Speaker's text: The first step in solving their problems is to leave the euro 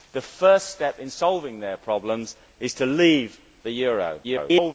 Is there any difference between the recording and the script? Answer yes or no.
yes